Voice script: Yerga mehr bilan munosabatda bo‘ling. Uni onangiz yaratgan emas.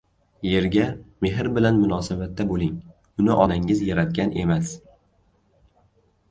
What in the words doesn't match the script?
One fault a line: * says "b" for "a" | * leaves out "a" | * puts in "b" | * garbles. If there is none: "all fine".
all fine